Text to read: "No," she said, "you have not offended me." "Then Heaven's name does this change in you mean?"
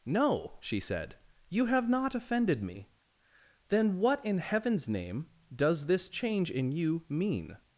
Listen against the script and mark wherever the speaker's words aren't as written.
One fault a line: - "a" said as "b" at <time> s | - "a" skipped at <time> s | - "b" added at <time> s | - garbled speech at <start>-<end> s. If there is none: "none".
- "what in" added at 4.0 s